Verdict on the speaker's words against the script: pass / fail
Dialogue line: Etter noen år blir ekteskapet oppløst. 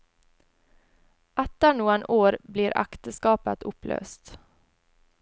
pass